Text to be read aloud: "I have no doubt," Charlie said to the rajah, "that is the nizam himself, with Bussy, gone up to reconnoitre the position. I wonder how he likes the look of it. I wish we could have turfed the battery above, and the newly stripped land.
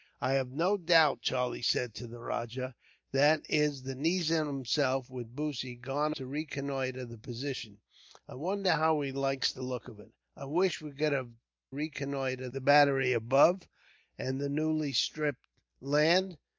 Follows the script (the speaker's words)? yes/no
no